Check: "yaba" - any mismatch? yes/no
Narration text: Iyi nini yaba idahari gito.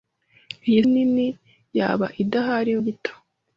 no